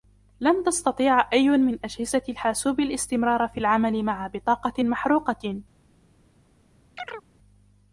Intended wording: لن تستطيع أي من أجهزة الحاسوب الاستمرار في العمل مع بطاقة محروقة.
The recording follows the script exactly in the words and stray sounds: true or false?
false